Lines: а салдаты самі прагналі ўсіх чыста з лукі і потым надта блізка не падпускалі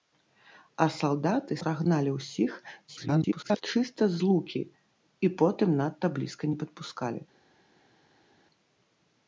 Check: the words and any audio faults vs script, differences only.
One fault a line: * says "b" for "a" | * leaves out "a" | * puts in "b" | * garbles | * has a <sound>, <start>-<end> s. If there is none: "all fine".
* leaves out "самі"
* garbles